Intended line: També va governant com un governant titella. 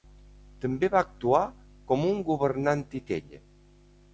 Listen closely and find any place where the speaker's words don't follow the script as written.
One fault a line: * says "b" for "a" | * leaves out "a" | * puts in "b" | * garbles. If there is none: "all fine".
* says "actuar" for "governant"